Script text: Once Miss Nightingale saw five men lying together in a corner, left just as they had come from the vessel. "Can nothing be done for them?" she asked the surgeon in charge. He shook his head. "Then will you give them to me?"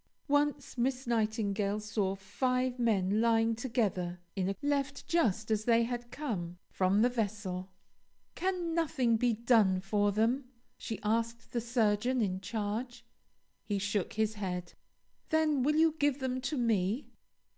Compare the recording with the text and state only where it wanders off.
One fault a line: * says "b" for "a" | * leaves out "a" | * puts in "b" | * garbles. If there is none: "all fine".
* leaves out "corner"